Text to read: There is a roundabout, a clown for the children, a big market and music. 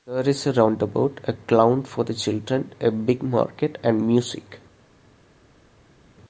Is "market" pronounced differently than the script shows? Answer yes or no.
no